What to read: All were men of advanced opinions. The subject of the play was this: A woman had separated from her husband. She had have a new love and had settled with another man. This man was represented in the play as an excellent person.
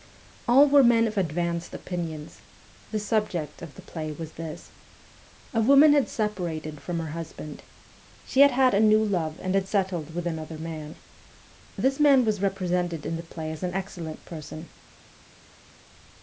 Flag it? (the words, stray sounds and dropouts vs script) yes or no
yes